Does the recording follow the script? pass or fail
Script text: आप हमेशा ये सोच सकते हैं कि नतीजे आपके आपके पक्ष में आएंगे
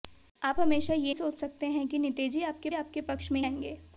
pass